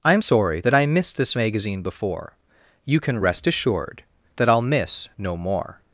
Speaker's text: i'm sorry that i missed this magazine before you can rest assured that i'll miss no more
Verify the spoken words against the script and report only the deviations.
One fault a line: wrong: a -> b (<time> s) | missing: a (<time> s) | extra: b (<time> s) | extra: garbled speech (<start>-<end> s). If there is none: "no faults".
no faults